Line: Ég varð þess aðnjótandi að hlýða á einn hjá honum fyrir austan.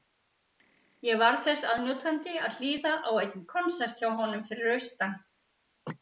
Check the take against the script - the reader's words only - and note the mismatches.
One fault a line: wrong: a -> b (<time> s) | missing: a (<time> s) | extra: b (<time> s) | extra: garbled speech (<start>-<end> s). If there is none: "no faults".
extra: konsert (3.5 s)